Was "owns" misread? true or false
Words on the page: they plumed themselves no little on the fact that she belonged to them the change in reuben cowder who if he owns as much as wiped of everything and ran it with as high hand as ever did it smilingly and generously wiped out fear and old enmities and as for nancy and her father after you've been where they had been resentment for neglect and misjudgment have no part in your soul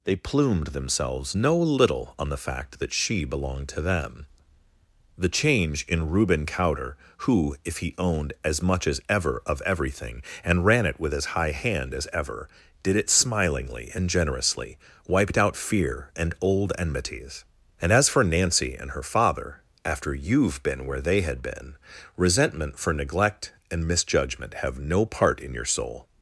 true